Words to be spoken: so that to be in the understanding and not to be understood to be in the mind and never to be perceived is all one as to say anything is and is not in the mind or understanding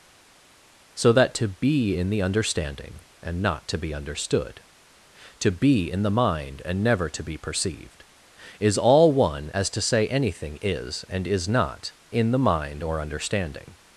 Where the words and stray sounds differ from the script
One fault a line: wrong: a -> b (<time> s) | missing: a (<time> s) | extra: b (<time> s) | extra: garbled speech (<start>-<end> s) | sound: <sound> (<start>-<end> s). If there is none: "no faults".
no faults